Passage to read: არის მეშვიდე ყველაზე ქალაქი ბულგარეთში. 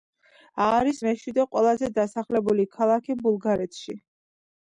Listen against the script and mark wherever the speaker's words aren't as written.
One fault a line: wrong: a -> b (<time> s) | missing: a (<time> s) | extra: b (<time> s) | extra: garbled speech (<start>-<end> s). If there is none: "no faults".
extra: დასახლებული (2.0 s)